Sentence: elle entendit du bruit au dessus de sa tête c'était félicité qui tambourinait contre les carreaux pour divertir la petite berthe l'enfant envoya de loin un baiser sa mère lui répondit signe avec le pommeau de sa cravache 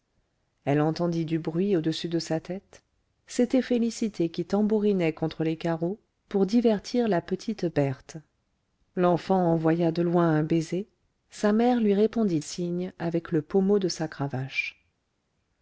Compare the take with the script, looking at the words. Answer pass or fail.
pass